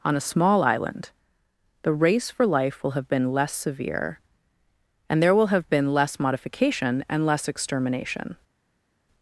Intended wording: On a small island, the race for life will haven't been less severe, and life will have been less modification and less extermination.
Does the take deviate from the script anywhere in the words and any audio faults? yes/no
yes